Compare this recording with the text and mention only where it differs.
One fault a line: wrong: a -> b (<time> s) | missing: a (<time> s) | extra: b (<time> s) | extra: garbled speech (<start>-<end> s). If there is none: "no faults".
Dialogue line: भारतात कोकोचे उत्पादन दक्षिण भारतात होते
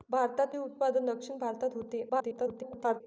missing: कोकोचे (0.5 s)
extra: garbled speech (2.1-3.0 s)